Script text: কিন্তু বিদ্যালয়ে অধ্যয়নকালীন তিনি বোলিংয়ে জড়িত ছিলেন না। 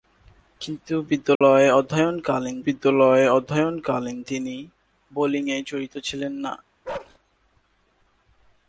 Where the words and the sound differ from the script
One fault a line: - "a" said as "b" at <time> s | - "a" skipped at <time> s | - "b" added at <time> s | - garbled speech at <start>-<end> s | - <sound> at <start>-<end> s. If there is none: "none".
- dropout at 1.4-1.4 s
- "বিদ্যালয়ে অধ্যয়নকালীন" added at 2.7 s
- bark at 6.8-7.2 s